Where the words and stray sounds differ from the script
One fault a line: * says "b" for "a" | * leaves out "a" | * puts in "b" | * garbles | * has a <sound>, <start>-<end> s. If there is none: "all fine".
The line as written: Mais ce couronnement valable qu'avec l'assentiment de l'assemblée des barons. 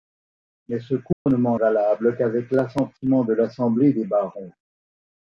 * has a dropout, 1.1-1.3 s